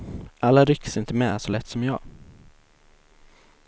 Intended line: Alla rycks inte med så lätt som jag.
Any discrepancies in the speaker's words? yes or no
no